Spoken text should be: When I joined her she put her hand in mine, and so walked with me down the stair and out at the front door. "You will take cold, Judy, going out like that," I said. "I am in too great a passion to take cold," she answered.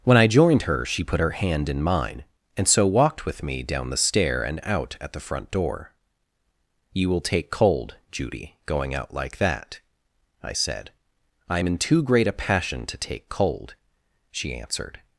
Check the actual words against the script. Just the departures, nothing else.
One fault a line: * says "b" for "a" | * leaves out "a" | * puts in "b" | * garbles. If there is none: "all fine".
all fine